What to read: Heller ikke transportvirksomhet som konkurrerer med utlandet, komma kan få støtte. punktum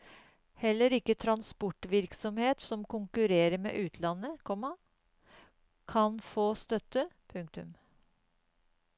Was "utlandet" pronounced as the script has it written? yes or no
yes